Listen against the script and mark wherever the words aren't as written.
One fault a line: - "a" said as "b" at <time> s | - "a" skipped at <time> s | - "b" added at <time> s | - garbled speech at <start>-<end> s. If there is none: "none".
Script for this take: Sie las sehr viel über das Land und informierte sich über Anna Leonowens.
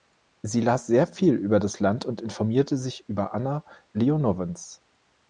none